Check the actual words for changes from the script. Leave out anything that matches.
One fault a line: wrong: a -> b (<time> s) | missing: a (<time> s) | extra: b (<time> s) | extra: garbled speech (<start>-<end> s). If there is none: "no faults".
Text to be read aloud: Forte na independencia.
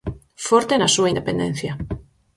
extra: súa (0.9 s)